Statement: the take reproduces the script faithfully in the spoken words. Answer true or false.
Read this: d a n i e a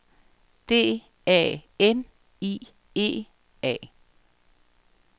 true